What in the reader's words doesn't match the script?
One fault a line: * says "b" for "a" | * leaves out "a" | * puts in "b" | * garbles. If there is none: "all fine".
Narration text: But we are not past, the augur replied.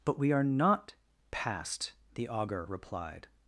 all fine